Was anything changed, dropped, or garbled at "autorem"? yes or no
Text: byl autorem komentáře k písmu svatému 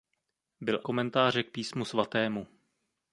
yes